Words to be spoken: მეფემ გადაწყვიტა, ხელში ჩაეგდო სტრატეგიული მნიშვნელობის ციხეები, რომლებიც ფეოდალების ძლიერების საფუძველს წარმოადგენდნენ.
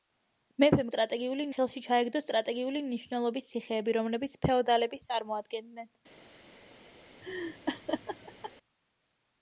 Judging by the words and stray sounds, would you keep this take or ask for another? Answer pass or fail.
fail